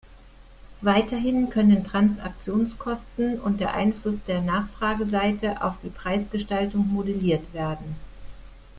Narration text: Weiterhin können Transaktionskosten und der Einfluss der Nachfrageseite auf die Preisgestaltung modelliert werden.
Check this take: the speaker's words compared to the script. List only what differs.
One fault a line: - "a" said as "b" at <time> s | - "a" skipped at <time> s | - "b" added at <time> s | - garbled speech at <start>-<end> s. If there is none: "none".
none